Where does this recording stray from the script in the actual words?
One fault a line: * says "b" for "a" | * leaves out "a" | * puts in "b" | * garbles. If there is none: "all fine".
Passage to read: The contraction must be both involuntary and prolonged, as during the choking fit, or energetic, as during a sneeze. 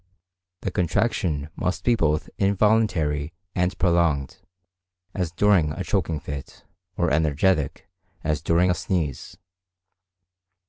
* says "a" for "the"